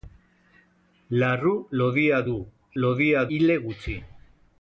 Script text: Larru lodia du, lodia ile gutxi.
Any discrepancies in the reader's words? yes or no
no